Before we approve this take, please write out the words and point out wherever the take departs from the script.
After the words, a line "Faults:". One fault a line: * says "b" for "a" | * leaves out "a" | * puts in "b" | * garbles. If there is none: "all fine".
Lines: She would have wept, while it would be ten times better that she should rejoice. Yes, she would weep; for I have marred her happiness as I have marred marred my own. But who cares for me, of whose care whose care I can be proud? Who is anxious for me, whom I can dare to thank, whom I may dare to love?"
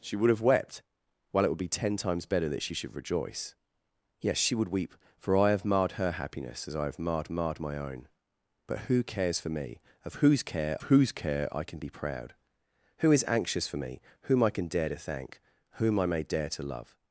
She would have wept, while it would be ten times better that she should rejoice. Yes, she would weep; for I have marred her happiness as I have marred marred my own. But who cares for me, of whose care whose care I can be proud? Who is anxious for me, whom I can dare to thank, whom I may dare to love?"
Faults:
all fine